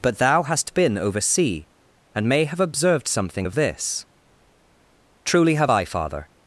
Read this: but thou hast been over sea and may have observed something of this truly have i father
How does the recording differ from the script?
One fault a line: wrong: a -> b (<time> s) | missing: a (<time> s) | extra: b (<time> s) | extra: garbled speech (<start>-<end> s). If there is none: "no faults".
no faults